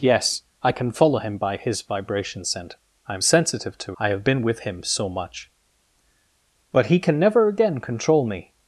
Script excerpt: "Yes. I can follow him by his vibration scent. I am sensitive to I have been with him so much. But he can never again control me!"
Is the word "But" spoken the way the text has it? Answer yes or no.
yes